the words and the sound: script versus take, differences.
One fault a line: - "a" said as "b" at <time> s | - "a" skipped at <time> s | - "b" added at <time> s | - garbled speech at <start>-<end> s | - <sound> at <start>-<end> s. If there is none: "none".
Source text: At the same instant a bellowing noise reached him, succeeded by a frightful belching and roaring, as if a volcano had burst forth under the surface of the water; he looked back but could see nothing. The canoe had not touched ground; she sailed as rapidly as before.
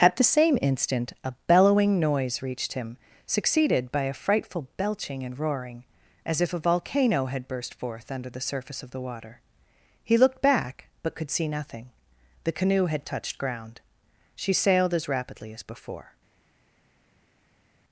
- "not" skipped at 13.1 s